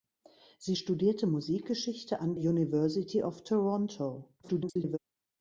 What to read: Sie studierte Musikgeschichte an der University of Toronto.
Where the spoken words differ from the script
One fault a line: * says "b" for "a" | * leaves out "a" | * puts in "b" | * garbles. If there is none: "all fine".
* leaves out "der"
* garbles